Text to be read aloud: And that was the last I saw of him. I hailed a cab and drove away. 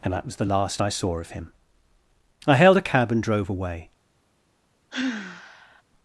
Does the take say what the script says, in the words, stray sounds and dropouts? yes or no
no